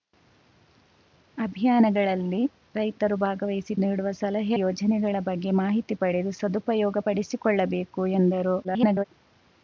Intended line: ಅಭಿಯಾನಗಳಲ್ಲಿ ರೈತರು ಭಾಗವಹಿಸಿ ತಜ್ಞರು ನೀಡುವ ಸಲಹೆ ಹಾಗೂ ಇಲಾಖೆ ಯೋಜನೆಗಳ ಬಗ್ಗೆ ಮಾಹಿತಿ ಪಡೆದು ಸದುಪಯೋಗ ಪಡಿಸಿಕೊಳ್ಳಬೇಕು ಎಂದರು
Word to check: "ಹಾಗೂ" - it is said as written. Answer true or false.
false